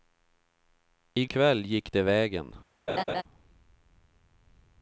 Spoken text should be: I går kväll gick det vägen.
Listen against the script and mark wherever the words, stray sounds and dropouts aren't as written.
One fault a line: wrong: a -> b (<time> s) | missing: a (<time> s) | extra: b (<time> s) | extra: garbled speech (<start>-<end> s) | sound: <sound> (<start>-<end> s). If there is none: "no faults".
missing: går (1.2 s)
sound: laugh (2.9-3.2 s)